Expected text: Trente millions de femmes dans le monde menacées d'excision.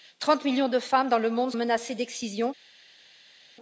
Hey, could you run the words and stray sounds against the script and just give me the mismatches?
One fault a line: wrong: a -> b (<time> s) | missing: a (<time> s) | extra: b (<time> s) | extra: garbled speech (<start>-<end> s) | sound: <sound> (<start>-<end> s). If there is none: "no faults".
no faults